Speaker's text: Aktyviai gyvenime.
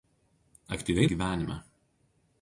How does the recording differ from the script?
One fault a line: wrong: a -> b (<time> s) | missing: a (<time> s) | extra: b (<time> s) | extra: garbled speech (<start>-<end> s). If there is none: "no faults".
no faults